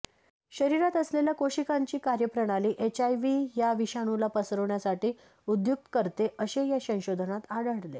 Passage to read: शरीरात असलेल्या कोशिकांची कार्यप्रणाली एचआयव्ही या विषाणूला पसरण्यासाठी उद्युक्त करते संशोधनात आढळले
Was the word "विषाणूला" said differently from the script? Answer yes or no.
no